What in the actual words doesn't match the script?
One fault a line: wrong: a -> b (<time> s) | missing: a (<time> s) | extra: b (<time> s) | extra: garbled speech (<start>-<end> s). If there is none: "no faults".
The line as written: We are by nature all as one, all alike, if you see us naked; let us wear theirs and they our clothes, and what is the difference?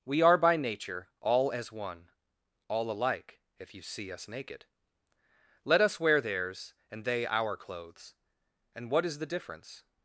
no faults